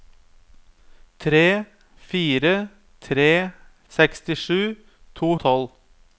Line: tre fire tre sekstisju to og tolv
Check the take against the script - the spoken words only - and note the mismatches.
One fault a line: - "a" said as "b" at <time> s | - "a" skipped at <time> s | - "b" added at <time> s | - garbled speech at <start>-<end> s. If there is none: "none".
none